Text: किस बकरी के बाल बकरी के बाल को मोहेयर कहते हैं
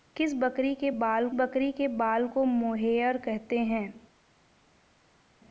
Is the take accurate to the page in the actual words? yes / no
yes